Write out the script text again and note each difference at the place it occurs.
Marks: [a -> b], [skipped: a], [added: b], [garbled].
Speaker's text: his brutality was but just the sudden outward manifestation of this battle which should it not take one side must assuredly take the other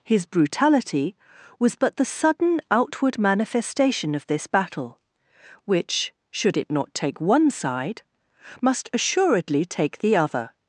his brutality was but [skipped: just] the sudden outward manifestation of this battle which should it not take one side must assuredly take the other